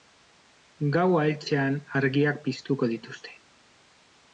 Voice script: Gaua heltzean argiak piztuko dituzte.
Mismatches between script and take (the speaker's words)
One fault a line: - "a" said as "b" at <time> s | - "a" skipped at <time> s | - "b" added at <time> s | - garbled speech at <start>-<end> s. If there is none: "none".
none